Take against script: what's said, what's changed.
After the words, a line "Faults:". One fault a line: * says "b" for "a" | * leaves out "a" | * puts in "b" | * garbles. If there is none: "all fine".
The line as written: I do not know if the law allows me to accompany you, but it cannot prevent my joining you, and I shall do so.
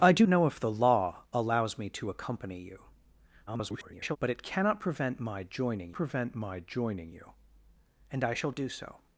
I do know if the law allows me to accompany you, [garbled] but it cannot prevent my joining prevent my joining you, and I shall do so.
Faults:
* leaves out "not"
* garbles
* puts in "prevent my joining"